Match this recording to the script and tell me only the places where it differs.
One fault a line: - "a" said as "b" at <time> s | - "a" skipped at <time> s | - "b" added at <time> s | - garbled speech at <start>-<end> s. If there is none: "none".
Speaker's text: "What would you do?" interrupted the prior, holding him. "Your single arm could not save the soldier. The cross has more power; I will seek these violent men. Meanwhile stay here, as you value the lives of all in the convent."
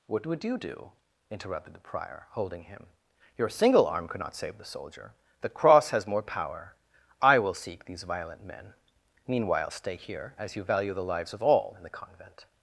none